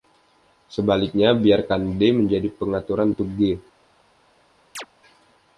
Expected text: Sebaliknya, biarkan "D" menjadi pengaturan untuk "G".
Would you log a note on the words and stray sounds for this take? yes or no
yes